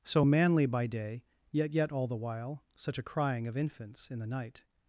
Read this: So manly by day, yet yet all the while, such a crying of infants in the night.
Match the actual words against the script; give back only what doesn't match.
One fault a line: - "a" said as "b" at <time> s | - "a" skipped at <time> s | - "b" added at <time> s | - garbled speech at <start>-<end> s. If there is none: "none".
none